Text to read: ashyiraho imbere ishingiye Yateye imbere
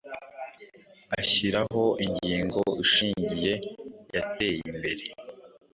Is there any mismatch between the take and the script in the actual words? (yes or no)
yes